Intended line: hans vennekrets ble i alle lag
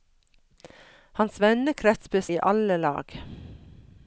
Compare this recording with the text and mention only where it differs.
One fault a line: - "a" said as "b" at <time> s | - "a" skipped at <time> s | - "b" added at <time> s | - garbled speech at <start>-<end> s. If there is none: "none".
none